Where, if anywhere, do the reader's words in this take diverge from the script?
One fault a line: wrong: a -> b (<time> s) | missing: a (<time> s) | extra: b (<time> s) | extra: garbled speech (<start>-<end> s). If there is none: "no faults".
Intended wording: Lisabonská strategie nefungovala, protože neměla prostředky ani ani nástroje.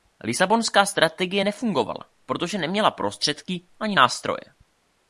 missing: ani (4.0 s)